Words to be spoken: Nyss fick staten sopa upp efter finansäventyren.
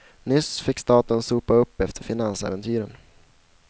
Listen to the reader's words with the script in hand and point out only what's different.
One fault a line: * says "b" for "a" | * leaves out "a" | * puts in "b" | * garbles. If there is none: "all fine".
all fine